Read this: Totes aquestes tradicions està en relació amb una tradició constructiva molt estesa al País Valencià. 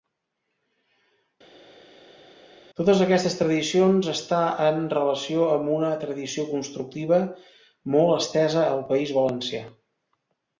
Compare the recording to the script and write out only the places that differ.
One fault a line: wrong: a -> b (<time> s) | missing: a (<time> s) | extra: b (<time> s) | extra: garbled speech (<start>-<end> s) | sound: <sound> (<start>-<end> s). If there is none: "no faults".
no faults